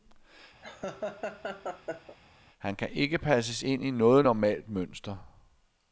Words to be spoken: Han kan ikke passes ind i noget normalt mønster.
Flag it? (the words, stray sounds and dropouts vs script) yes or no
yes